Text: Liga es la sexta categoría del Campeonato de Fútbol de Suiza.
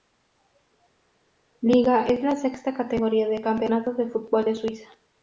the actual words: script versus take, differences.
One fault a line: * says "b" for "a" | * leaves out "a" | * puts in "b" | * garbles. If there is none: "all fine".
all fine